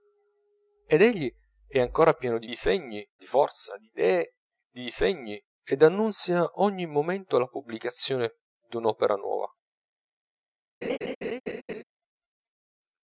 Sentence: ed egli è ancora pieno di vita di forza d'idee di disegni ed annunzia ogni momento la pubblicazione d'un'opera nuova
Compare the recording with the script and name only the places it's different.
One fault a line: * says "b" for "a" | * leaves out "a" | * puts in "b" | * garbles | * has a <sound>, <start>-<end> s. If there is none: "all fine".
* says "disegni" for "vita"
* has a laugh, 10.8-11.8 s